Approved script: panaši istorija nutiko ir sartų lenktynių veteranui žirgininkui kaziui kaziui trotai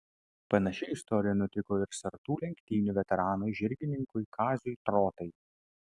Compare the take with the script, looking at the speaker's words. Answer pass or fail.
fail